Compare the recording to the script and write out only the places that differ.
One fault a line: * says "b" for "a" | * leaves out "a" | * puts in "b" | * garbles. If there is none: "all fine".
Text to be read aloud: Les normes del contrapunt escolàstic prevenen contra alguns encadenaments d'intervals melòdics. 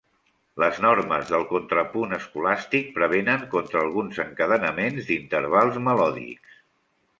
all fine